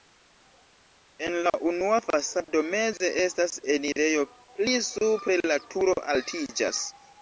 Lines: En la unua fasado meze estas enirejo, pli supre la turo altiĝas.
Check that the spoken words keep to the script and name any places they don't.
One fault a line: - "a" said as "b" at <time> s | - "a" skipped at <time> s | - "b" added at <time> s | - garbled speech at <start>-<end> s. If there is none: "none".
none